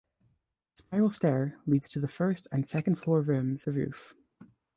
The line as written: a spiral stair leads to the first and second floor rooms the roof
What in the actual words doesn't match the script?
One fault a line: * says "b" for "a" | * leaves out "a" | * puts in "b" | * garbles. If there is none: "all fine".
all fine